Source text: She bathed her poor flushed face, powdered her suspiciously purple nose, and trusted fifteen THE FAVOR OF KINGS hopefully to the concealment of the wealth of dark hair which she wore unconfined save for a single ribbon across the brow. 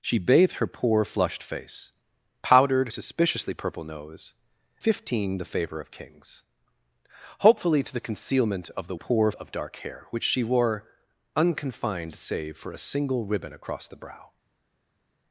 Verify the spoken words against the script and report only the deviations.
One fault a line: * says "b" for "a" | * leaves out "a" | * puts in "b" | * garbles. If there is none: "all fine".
* leaves out "her"
* leaves out "and trusted"
* says "poor" for "wealth"